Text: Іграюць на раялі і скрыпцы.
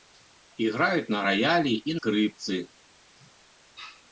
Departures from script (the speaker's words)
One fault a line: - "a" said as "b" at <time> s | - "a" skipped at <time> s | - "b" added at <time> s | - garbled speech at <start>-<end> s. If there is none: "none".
none